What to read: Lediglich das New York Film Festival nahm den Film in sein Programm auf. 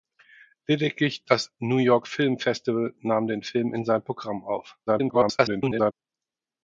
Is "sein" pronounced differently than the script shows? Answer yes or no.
no